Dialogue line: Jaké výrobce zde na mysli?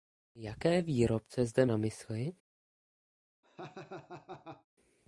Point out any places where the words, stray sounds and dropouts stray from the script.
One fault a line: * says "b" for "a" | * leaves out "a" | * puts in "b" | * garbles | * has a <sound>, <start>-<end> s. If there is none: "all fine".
* has a laugh, 3.4-4.7 s